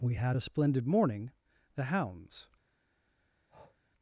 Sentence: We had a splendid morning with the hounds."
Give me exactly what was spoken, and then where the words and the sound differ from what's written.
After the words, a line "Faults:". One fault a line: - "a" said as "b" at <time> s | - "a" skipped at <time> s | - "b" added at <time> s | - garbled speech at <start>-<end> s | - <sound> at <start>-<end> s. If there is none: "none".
We had a splendid morning the hounds."
Faults:
- "with" skipped at 1.3 s
- breath at 3.5-3.8 s